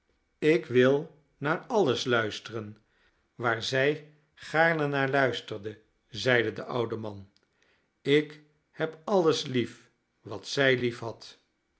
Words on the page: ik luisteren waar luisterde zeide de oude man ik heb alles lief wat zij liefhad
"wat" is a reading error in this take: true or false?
false